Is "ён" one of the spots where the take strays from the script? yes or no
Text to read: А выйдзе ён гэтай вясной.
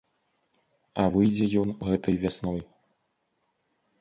no